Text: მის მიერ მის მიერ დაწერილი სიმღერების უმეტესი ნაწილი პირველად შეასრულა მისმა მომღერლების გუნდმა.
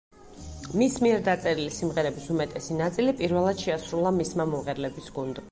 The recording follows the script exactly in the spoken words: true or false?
false